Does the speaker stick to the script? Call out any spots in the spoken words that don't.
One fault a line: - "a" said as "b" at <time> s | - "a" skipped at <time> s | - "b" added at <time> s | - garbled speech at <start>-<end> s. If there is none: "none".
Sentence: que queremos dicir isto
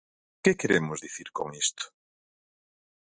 - "con" added at 1.4 s